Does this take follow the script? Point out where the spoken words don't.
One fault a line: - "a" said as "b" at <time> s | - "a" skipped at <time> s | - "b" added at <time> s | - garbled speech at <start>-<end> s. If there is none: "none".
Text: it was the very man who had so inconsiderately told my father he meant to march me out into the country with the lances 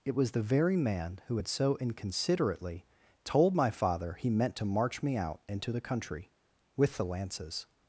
none